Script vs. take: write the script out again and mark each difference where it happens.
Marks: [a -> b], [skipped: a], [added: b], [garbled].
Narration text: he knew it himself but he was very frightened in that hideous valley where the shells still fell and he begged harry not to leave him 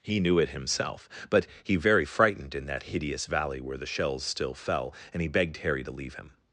he knew it himself but he [skipped: was] very frightened in that hideous valley where the shells still fell and he begged harry [skipped: not] to leave him